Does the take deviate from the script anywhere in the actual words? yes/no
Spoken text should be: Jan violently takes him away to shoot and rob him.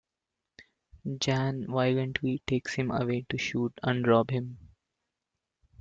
no